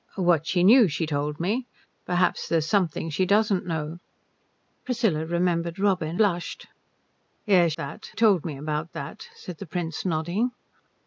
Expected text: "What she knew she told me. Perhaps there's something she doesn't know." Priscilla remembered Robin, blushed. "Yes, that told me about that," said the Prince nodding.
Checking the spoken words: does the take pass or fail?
pass